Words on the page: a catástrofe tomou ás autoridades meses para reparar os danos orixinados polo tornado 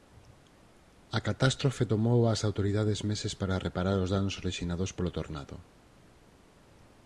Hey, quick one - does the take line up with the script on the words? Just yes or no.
yes